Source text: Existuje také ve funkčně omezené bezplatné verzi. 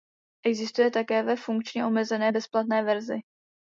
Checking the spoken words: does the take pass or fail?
pass